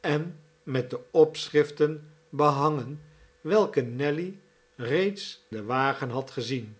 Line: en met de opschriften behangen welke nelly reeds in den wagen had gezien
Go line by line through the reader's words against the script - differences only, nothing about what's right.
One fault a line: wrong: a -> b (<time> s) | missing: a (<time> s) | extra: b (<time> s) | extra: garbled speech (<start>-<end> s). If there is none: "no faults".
missing: in (5.5 s)